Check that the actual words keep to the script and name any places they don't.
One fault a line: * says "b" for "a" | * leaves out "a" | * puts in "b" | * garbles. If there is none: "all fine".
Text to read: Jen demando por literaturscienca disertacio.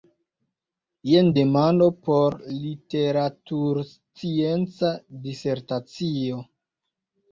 all fine